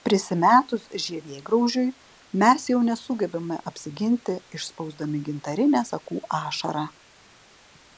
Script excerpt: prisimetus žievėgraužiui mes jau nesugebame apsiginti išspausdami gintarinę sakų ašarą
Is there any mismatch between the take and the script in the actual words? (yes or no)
no